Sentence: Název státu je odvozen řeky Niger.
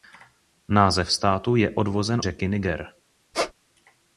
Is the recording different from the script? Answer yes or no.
no